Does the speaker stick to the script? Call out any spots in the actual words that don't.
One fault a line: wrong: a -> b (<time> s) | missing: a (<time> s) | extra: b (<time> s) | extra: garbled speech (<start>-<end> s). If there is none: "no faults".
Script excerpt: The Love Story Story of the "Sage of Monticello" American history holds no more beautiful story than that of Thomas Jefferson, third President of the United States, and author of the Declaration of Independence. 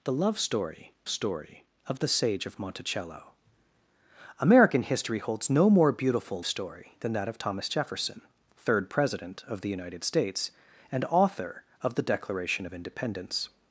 no faults